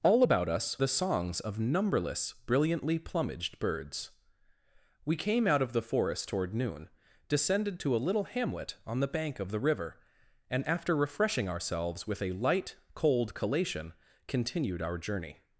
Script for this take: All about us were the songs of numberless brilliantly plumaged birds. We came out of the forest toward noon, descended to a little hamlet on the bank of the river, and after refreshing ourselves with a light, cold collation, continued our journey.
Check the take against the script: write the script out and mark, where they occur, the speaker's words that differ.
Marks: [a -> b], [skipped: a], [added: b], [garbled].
All about us [skipped: were] the songs of numberless brilliantly plumaged birds. We came out of the forest toward noon, descended to a little hamlet on the bank of the river, and after refreshing ourselves with a light, cold collation, continued our journey.